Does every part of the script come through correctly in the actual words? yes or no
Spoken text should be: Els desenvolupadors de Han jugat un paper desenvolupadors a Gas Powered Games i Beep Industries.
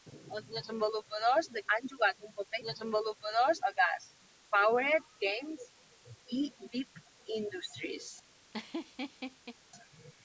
yes